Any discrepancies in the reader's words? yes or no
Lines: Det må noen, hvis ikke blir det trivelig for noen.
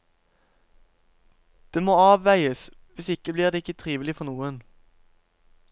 yes